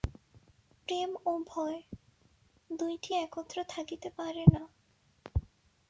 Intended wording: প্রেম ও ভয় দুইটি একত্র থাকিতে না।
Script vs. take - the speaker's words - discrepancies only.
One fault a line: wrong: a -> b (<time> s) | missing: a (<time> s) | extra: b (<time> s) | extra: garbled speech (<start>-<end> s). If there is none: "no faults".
extra: পারে (4.2 s)